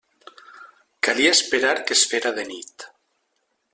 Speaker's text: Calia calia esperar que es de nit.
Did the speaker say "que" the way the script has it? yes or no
yes